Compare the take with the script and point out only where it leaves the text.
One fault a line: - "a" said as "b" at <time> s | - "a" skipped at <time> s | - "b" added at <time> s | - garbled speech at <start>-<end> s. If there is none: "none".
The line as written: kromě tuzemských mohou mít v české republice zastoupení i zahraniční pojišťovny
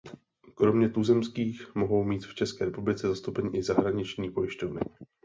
none